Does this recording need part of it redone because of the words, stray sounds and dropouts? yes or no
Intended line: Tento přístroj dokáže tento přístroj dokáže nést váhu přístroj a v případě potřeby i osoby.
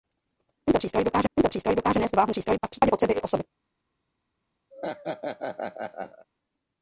yes